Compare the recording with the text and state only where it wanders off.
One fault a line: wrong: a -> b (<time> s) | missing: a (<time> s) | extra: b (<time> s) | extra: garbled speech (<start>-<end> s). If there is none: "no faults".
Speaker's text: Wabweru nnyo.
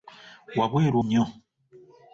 no faults